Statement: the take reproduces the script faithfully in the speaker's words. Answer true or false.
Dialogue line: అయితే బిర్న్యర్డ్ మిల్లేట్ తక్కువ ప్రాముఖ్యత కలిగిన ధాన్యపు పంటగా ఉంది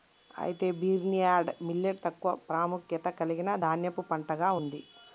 true